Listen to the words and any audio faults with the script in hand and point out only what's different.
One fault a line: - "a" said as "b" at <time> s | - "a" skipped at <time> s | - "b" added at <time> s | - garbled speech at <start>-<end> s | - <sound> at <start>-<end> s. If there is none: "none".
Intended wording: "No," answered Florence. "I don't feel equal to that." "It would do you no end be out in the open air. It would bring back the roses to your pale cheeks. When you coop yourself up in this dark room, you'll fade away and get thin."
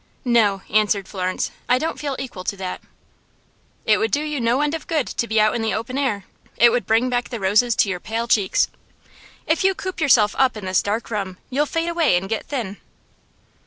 - "of good to" added at 4.7 s
- "When" said as "If" at 9.5 s